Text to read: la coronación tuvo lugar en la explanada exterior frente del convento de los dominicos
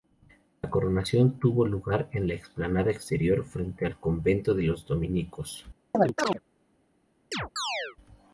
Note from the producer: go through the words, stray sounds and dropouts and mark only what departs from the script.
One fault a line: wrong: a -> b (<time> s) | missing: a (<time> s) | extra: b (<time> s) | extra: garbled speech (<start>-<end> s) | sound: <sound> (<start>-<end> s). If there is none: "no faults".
wrong: del -> al (3.8 s)
sound: chirp (5.9-6.4 s)
sound: chirp (7.3-8.0 s)